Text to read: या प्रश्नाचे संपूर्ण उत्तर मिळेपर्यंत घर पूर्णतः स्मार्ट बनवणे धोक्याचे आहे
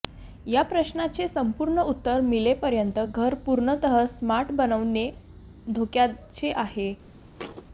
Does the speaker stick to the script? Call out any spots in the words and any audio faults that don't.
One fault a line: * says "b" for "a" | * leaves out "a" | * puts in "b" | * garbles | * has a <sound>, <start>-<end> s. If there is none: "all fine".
* has a thud, 7.4-7.6 s